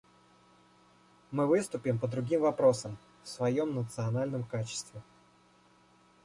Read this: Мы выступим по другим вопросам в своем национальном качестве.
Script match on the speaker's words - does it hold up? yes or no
yes